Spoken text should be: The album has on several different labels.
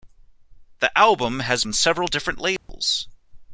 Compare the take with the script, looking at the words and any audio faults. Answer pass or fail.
fail